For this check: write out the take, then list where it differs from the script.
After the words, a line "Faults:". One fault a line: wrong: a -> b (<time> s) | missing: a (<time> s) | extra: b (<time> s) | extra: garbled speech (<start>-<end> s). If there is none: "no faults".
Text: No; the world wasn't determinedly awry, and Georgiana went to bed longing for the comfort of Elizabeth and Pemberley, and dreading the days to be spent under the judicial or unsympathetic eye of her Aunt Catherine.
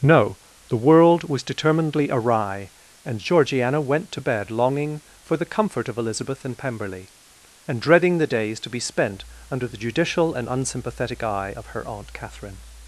No; the world was determinedly awry, and Georgiana went to bed longing for the comfort of Elizabeth and Pemberley, and dreading the days to be spent under the judicial and unsympathetic eye of her Aunt Catherine.
Faults:
wrong: wasn't -> was (1.3 s)
wrong: or -> and (10.3 s)